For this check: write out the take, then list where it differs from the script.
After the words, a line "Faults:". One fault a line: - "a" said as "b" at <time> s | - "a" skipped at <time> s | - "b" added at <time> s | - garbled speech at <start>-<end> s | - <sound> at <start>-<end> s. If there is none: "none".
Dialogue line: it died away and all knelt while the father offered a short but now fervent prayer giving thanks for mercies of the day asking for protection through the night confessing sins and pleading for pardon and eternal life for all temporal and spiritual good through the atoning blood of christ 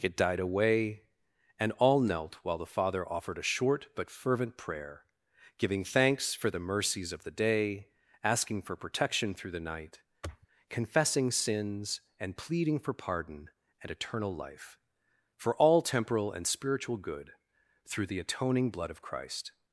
it died away and all knelt while the father offered a short but fervent prayer giving thanks for the mercies of the day asking for protection through the night confessing sins and pleading for pardon and eternal life for all temporal and spiritual good through the atoning blood of christ
Faults:
- "now" skipped at 4.1 s
- "the" added at 6.5 s
- sniff at 10.2-10.5 s